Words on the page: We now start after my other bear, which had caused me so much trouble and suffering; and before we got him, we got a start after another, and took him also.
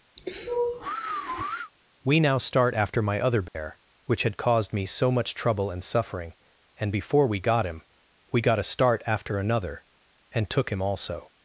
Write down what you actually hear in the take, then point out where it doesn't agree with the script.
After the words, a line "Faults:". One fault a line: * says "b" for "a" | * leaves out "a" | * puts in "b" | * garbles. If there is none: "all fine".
We now start after my other bear, which had caused me so much trouble and suffering; and before we got him, we got a start after another, and took him also.
Faults:
all fine